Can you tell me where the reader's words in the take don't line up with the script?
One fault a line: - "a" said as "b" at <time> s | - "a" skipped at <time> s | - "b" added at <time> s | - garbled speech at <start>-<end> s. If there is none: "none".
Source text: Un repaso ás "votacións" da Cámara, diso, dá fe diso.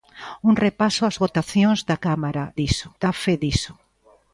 none